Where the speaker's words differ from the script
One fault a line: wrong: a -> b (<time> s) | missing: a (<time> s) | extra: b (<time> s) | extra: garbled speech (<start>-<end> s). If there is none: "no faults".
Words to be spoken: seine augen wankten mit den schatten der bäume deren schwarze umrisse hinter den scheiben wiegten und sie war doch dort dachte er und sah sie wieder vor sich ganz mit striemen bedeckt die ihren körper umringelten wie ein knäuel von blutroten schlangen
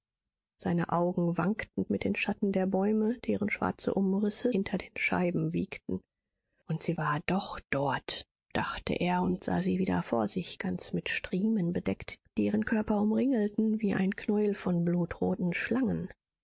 no faults